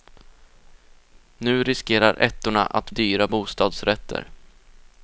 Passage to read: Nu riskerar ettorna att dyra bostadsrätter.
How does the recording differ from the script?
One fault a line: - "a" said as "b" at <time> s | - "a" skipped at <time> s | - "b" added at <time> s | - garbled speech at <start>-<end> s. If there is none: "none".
none